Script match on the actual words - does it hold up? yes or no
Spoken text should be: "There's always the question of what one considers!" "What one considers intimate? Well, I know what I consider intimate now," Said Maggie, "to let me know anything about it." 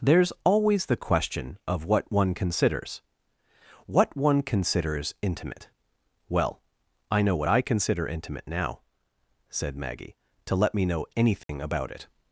yes